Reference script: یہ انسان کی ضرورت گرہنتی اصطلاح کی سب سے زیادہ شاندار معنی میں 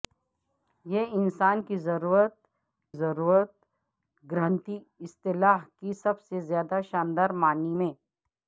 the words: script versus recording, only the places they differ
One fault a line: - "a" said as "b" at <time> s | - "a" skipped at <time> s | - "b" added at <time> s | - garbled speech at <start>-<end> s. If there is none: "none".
- "ضرورت" added at 2.9 s